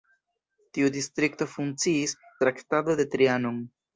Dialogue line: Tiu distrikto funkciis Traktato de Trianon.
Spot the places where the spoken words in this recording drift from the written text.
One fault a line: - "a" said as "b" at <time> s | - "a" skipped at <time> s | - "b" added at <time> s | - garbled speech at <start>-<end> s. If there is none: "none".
none